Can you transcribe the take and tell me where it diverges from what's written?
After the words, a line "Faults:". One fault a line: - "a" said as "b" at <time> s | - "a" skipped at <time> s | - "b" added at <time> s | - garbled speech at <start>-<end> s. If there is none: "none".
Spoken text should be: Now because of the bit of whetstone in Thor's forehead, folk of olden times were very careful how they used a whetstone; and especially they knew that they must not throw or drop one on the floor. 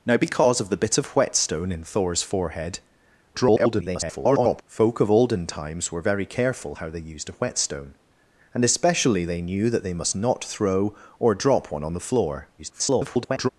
Now because of the bit of whetstone in Thor's forehead, [garbled] folk of olden times were very careful how they used a whetstone; and especially they knew that they must not throw or drop one on the floor. [garbled]
Faults:
- garbled speech at 3.3-4.6 s
- garbled speech at 12.6-13.5 s